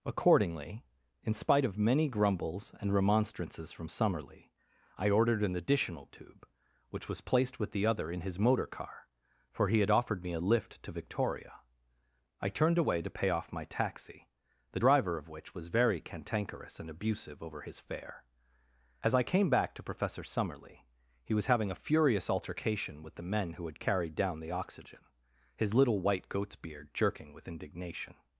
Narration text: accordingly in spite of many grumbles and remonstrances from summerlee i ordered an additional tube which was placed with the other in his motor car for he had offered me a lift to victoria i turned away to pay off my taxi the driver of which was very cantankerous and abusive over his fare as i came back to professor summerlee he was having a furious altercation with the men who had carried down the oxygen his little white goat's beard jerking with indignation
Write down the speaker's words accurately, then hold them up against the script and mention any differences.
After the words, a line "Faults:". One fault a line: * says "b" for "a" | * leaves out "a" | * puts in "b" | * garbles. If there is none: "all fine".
accordingly in spite of many grumbles and remonstrances from summerlee i ordered an additional tube which was placed with the other in his motor car for he had offered me a lift to victoria i turned away to pay off my taxi the driver of which was very cantankerous and abusive over his fare as i came back to professor summerlee he was having a furious altercation with the men who had carried down the oxygen his little white goat's beard jerking with indignation
Faults:
all fine